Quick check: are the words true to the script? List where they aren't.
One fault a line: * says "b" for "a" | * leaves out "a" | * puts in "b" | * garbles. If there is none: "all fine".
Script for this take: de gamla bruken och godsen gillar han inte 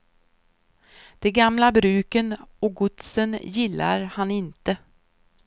all fine